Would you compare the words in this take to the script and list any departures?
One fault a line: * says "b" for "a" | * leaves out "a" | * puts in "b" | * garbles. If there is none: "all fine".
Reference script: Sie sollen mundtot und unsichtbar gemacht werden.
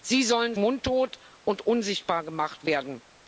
all fine